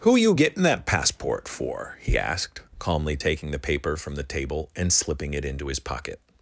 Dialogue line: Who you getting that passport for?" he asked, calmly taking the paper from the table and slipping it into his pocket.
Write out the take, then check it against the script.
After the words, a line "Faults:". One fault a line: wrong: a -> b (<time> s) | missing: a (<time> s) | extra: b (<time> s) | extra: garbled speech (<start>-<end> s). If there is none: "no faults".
Who you getting that passport for?" he asked, calmly taking the paper from the table and slipping it into his pocket.
Faults:
no faults